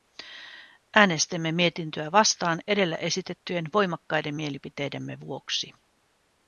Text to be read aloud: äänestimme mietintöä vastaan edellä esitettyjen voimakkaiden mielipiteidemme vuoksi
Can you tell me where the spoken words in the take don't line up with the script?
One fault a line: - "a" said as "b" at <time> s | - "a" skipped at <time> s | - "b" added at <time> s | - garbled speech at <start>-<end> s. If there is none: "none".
none